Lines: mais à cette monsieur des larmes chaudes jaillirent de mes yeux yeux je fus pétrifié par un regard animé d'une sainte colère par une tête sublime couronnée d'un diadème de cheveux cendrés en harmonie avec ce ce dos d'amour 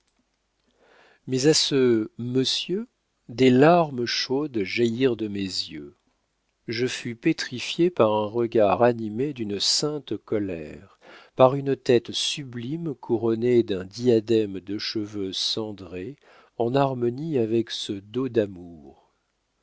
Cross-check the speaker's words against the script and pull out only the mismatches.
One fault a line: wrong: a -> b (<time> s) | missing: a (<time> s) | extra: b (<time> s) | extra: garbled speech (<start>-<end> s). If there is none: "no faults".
wrong: cette -> ce (1.5 s)
missing: yeux (6.0 s)
missing: ce (17.9 s)